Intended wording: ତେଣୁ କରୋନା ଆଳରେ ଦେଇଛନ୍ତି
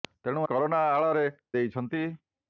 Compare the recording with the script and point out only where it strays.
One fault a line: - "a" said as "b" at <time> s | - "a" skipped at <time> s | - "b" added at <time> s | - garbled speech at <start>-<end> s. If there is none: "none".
none